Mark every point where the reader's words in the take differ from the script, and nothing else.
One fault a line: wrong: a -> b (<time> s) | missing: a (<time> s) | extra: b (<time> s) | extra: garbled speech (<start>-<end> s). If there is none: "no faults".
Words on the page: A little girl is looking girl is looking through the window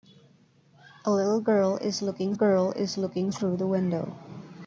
no faults